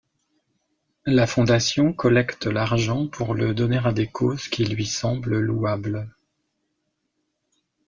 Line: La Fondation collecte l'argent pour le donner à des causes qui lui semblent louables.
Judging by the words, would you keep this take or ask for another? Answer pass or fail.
pass